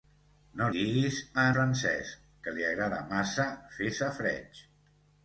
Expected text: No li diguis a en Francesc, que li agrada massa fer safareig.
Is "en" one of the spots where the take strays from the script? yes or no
yes